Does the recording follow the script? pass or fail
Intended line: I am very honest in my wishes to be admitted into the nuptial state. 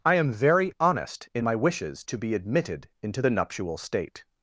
pass